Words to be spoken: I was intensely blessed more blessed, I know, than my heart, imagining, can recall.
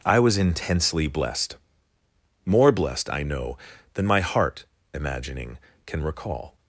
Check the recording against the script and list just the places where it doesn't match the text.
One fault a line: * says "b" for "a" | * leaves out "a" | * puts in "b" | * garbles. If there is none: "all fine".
all fine